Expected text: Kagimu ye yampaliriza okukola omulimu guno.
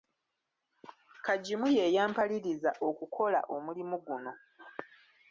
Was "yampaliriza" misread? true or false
false